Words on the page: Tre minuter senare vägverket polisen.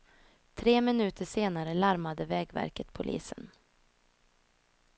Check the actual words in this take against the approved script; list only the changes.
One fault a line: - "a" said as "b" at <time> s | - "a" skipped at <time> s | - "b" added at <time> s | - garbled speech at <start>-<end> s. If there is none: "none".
- "larmade" added at 1.7 s